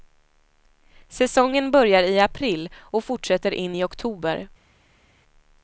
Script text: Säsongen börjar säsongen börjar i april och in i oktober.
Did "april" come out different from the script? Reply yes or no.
no